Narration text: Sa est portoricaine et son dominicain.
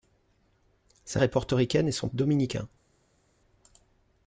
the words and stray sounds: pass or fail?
pass